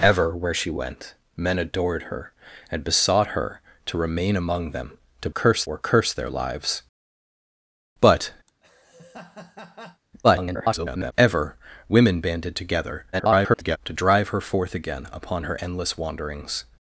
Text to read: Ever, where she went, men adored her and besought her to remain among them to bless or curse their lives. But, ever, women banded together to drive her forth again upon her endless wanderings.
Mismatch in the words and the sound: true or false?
true